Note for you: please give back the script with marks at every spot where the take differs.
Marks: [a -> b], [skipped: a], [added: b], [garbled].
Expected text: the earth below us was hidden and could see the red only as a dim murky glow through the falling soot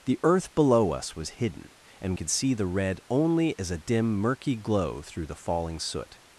the earth below us was hidden and could see the red only as a dim murky glow through the falling soot